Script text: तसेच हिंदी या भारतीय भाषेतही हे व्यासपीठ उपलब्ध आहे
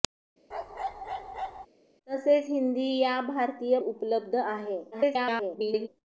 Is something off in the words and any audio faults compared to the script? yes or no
yes